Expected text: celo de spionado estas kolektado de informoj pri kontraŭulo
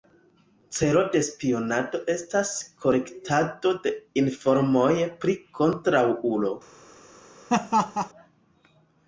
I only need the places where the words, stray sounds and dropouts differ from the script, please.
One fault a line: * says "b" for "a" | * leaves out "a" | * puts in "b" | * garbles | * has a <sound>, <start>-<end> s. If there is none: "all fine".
* has a laugh, 7.5-8.1 s